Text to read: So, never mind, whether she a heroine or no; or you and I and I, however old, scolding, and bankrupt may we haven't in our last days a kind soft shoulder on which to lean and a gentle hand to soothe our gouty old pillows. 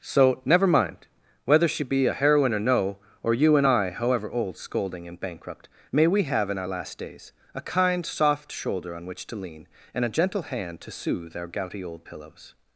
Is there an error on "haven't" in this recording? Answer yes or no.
yes